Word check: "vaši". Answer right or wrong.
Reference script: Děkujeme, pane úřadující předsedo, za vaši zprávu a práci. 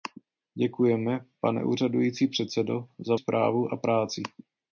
wrong